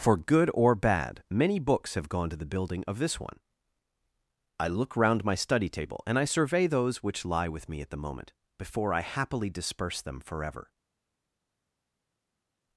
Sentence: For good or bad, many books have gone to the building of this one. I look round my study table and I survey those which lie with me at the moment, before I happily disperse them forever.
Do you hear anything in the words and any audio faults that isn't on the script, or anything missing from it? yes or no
no